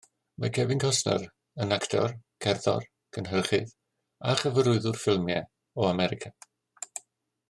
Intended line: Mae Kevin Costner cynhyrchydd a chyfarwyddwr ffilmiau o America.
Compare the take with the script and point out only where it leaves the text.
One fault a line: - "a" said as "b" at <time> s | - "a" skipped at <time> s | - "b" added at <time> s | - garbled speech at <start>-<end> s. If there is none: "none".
- "yn actor cerddor" added at 1.6 s